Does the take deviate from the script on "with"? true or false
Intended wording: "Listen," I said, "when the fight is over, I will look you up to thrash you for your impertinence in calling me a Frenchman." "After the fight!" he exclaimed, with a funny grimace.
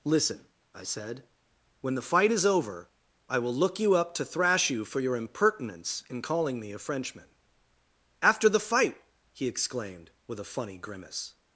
false